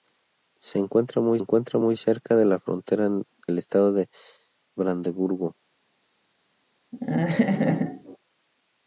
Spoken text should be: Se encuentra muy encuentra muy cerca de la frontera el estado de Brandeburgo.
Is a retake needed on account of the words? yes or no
no